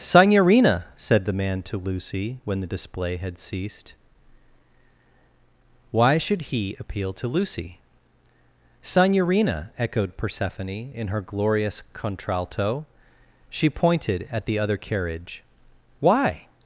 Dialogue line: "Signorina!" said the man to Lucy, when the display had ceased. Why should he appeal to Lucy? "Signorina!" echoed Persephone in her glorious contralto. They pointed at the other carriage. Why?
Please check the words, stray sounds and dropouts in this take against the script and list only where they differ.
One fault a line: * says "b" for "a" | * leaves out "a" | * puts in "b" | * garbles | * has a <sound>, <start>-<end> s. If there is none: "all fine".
* says "She" for "They"